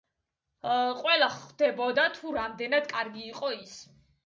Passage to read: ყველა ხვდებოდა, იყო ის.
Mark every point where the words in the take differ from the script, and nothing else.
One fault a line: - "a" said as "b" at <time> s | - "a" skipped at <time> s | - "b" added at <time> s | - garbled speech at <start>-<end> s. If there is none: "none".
- "თუ რამდენად კარგი" added at 2.2 s